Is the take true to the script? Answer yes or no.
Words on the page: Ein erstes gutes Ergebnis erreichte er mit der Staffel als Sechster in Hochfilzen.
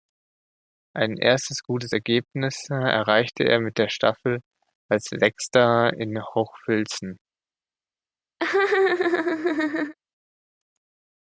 yes